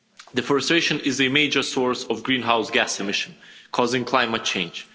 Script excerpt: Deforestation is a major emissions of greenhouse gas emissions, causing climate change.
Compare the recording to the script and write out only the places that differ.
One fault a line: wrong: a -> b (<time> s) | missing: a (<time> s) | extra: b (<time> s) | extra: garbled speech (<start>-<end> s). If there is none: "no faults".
wrong: emissions -> source (1.6 s)